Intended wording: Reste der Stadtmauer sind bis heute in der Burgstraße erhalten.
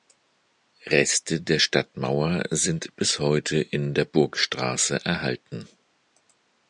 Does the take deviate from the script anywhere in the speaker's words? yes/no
no